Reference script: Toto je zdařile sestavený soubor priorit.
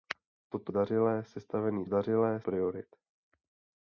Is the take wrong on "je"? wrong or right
wrong